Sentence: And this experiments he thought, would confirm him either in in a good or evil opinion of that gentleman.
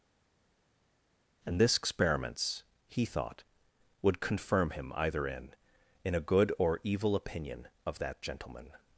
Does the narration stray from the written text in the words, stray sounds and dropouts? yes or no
no